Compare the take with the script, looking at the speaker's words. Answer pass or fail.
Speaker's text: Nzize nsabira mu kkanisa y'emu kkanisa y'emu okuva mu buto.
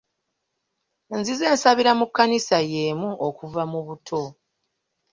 fail